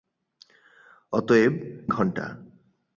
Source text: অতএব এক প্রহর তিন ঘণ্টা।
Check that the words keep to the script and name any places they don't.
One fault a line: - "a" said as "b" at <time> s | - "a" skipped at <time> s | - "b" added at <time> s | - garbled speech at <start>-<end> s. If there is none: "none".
- "এক প্রহর তিন" skipped at 1.5 s